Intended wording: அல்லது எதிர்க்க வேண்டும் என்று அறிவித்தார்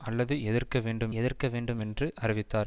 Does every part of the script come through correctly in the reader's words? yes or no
no